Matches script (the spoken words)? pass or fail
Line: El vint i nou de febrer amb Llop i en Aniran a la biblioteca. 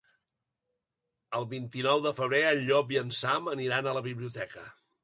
fail